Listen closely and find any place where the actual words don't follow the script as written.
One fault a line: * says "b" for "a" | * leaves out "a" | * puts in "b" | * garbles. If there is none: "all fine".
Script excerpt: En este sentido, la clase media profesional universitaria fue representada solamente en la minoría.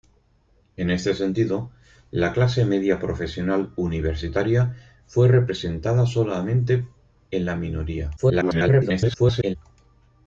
* garbles